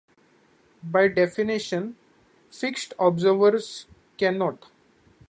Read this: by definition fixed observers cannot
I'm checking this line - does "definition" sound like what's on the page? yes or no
yes